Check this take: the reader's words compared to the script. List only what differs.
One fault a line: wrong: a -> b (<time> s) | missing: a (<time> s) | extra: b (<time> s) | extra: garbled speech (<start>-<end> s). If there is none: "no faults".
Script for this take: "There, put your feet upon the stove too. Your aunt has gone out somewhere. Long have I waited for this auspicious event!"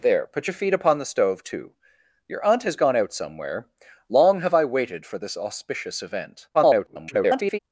extra: garbled speech (6.5-7.6 s)